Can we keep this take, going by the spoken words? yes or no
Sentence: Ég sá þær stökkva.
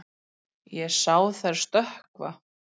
yes